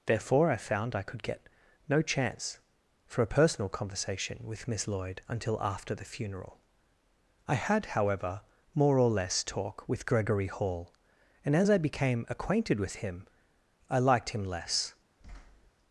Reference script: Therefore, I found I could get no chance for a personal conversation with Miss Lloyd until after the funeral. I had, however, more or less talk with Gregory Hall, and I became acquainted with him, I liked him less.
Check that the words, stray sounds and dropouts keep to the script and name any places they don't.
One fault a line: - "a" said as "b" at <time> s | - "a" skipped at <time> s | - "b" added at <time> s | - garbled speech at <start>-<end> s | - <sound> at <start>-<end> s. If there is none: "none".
- "as" added at 11.6 s
- thud at 15.2-15.7 s